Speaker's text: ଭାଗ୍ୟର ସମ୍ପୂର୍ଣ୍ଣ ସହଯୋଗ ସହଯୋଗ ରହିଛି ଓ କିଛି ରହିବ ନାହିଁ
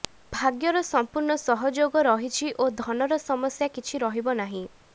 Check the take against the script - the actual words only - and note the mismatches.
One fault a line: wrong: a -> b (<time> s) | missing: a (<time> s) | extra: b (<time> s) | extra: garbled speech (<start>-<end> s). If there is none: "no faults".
missing: ସହଯୋଗ (2.0 s)
extra: ଧନର ସମସ୍ୟା (2.8 s)